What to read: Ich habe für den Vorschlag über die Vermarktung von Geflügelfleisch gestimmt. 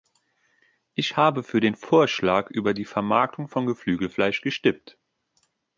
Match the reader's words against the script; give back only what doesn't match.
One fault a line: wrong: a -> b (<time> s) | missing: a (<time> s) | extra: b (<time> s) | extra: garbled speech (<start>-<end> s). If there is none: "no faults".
no faults